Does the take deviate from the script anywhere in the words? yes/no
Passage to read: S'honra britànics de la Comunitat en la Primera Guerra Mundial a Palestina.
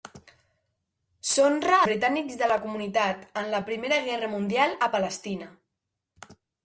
no